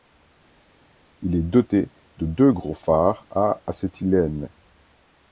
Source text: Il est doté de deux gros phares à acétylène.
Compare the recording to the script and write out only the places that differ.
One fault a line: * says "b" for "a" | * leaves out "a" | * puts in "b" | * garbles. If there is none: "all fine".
all fine